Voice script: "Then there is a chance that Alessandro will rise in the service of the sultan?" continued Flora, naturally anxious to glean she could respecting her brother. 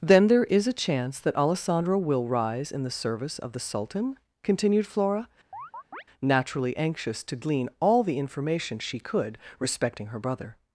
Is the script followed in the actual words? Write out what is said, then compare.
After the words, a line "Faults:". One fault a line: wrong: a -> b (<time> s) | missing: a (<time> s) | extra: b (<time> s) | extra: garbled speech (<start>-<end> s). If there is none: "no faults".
"Then there is a chance that Alessandro will rise in the service of the sultan?" continued Flora, naturally anxious to glean all the information she could respecting her brother.
Faults:
extra: all the information (7.8 s)